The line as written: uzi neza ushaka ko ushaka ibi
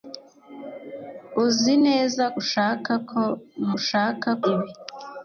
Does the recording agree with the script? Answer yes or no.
yes